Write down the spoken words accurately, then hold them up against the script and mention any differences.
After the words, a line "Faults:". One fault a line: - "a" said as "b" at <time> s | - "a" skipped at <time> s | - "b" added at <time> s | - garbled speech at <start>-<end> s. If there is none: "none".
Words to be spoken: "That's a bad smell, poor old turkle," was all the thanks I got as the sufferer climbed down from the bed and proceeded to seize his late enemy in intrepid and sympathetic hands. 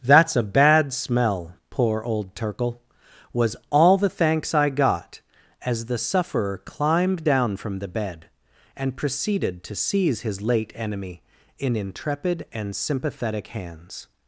"That's a bad smell, poor old turkle," was all the thanks I got as the sufferer climbed down from the bed and proceeded to seize his late enemy in intrepid and sympathetic hands.
Faults:
none